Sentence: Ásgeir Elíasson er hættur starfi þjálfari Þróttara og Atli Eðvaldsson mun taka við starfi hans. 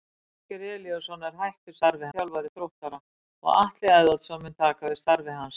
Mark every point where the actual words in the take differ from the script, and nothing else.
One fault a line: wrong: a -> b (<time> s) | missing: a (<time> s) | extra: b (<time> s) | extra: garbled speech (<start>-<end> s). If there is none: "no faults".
no faults